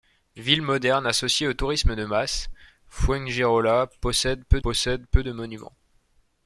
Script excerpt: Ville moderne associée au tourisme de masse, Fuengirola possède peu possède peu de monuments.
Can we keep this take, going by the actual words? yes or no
yes